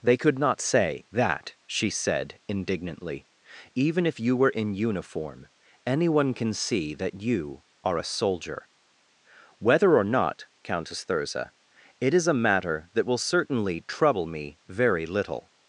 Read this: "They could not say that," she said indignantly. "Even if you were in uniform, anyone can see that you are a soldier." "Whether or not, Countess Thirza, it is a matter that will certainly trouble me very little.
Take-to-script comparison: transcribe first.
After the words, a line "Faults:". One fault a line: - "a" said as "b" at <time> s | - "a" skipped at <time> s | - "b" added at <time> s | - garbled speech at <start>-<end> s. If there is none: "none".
"They could not say that," she said indignantly. "Even if you were in uniform, anyone can see that you are a soldier." "Whether or not, Countess Thirza, it is a matter that will certainly trouble me very little.
Faults:
none